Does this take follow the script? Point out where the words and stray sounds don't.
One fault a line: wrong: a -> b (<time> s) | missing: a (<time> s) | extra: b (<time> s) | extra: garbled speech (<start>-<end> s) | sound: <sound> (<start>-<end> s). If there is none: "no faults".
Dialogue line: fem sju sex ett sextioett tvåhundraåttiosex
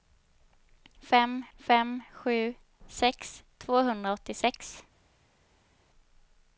extra: fem (1.6 s)
missing: ett sextioett (3.4 s)